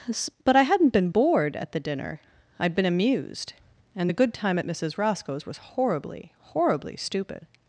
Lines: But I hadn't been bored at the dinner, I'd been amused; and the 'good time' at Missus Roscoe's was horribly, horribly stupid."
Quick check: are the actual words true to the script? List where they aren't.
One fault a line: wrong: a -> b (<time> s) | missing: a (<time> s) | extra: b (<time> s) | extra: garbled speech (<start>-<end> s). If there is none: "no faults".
no faults